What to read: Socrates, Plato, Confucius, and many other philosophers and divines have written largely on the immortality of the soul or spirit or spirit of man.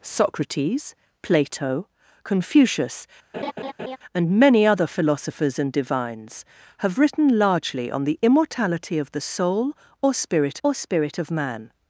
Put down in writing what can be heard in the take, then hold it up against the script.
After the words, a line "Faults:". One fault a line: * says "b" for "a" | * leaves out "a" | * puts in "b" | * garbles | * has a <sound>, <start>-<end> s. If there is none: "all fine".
Socrates, Plato, Confucius, and many other philosophers and divines have written largely on the immortality of the soul or spirit or spirit of man.
Faults:
* has a laugh, 3.3-4.0 s